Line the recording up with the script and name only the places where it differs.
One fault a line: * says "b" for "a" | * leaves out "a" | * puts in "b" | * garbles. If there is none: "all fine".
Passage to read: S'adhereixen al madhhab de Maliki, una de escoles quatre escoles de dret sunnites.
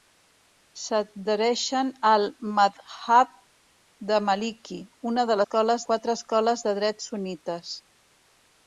all fine